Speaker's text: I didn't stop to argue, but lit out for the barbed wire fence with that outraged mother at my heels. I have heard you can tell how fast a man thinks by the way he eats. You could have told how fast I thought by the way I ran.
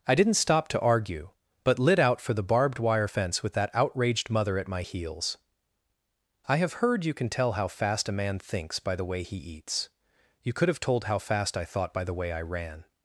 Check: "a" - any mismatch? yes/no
no